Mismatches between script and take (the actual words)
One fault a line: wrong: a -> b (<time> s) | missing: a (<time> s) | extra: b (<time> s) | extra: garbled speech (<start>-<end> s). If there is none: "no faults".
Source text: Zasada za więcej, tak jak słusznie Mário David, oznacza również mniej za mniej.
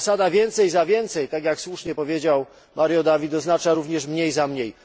extra: więcej (0.3 s)
extra: powiedział (1.9 s)